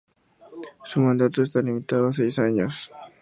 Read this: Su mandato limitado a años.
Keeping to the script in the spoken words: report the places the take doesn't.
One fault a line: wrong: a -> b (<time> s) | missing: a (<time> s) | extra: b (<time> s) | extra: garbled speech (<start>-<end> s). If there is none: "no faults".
extra: está (1.4 s)
extra: seis (2.1 s)